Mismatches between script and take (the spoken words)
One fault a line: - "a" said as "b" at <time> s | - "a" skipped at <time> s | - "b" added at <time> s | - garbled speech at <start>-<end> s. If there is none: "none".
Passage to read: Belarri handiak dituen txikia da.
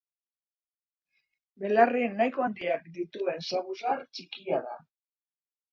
- "nahiko" added at 2.1 s
- "saguzar" added at 3.5 s